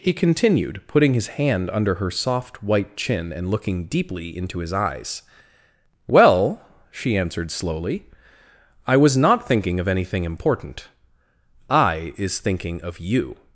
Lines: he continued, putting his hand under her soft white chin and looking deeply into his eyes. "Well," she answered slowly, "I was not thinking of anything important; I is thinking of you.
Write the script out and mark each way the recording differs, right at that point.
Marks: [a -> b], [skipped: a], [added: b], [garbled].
he continued, putting his hand under her soft white chin and looking deeply into his eyes. "Well," she answered slowly, "I was not thinking of anything important; I is thinking of you.